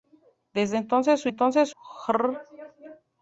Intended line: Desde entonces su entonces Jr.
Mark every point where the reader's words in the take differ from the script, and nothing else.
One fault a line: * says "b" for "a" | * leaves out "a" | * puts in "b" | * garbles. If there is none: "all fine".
all fine